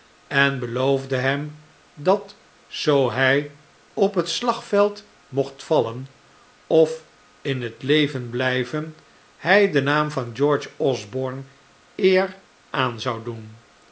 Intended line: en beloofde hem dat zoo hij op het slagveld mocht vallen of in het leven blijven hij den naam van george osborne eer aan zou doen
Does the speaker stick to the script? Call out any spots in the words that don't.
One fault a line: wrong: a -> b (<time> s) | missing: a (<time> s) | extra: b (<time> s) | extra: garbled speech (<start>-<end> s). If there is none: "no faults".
no faults